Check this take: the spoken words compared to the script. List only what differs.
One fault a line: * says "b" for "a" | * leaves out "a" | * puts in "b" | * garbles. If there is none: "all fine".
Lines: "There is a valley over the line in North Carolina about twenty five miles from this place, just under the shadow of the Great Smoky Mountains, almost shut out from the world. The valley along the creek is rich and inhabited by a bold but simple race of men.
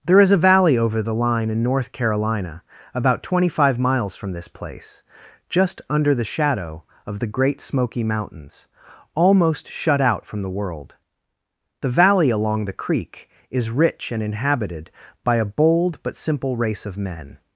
all fine